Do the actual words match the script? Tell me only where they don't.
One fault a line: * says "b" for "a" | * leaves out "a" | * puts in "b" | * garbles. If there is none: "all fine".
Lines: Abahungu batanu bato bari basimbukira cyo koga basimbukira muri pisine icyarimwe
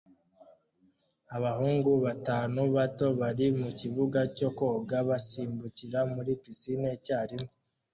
* says "mukibuga" for "basimbukira"